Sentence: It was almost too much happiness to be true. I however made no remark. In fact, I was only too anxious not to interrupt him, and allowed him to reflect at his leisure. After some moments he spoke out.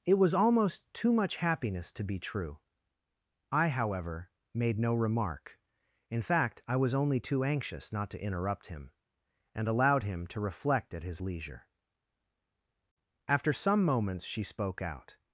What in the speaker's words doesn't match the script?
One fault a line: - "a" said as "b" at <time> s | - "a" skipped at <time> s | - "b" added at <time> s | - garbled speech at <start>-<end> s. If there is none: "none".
- "he" said as "she" at 14.2 s